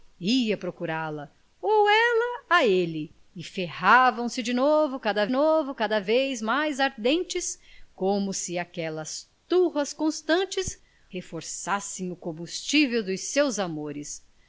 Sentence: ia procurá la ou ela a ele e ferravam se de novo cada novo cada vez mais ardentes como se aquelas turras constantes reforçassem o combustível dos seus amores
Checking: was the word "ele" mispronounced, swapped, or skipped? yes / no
no